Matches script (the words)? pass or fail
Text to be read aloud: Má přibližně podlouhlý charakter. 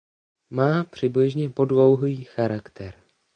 pass